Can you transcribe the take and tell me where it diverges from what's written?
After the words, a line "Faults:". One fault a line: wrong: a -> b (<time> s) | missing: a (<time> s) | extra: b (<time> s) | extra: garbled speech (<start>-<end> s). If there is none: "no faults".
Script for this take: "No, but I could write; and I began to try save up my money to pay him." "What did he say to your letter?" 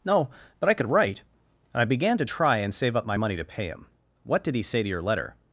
"No, but I could write; and I began to try and save up my money to pay him." "What did he say to your letter?"
Faults:
extra: and (2.6 s)